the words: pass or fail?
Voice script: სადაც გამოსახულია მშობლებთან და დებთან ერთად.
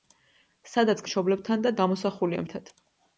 fail